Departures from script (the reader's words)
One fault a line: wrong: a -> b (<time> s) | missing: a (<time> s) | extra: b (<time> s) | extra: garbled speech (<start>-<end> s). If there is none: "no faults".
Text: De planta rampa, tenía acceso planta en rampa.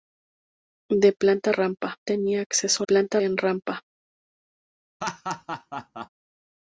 no faults